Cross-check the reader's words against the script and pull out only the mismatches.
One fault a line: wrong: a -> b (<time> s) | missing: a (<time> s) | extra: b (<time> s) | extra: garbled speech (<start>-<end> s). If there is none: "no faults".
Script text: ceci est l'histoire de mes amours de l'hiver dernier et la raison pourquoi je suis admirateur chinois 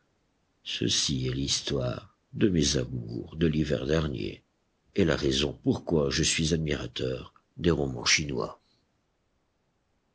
extra: des romans (7.6 s)